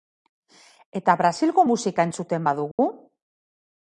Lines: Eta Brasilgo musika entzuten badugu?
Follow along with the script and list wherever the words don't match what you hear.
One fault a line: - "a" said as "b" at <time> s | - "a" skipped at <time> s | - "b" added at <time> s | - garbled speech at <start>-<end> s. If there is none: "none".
none